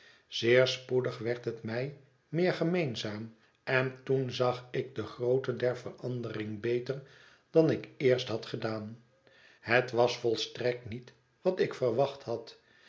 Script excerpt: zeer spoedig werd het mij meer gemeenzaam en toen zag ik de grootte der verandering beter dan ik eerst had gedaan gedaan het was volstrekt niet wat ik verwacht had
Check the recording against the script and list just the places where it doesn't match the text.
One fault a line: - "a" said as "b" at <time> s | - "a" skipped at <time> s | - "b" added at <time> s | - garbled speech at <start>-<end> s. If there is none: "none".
- "gedaan" skipped at 9.0 s